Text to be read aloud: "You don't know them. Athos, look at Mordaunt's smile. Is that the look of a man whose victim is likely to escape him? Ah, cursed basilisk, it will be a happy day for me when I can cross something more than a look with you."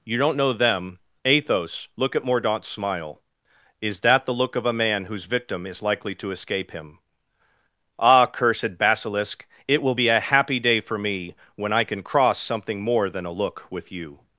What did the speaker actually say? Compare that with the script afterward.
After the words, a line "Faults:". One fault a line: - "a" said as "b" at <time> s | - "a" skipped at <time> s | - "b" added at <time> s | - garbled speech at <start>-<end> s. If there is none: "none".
"You don't know them. Athos, look at Mordaunt's smile. Is that the look of a man whose victim is likely to escape him? Ah, cursed basilisk, it will be a happy day for me when I can cross something more than a look with you."
Faults:
none